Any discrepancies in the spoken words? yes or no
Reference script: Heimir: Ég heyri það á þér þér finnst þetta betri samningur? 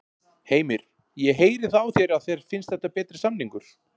yes